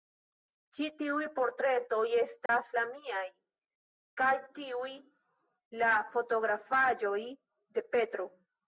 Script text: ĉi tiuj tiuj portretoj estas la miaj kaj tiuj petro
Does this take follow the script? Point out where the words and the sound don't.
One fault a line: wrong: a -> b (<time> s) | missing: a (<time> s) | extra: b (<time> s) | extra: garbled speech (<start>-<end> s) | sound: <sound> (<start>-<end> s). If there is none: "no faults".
missing: tiuj (1.3 s)
sound: dropout (2.5-2.5 s)
extra: la fotografaĵoj de (5.9 s)